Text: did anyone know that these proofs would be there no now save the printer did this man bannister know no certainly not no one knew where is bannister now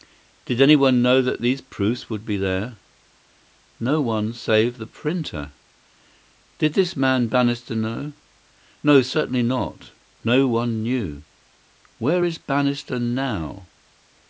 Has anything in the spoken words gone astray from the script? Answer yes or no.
yes